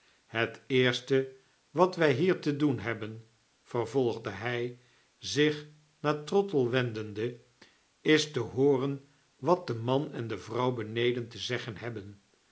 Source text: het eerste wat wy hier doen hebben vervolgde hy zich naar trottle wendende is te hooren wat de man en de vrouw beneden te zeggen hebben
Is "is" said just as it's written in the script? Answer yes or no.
yes